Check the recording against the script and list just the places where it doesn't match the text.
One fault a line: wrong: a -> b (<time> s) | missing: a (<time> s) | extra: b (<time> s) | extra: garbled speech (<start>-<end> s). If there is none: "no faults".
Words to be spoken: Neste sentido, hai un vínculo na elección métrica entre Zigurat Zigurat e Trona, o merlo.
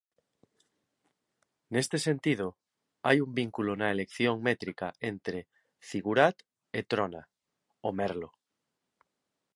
missing: Zigurat (6.4 s)